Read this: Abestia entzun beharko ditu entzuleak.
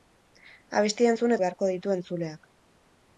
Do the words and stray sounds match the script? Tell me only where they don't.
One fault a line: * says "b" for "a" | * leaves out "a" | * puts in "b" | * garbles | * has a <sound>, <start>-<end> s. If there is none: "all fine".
all fine